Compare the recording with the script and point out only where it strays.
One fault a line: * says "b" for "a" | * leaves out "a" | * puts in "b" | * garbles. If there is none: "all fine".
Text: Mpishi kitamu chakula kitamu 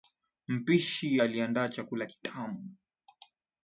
* says "aliandaa" for "kitamu"